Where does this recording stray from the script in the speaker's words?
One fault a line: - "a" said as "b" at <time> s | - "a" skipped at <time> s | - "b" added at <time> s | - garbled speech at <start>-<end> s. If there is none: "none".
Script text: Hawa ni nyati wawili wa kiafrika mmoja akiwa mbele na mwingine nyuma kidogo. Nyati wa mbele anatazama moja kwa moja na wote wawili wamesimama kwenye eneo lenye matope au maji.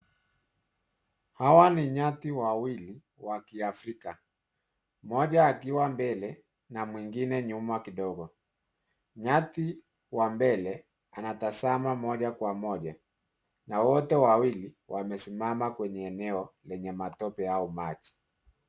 none